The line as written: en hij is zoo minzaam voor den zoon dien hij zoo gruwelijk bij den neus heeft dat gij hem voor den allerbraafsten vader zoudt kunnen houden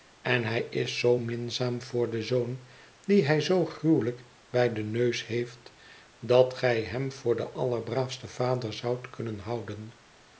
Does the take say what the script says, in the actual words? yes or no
yes